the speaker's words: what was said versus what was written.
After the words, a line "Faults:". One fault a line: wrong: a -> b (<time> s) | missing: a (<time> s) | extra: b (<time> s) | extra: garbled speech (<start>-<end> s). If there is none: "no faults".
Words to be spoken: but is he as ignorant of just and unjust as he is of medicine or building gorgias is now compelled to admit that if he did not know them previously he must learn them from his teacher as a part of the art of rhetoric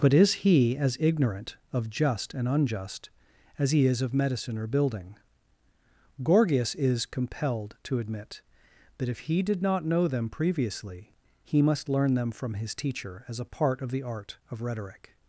but is he as ignorant of just and unjust as he is of medicine or building gorgias is compelled to admit that if he did not know them previously he must learn them from his teacher as a part of the art of rhetoric
Faults:
missing: now (7.0 s)